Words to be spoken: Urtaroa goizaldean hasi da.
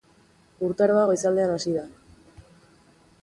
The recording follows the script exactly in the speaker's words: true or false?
true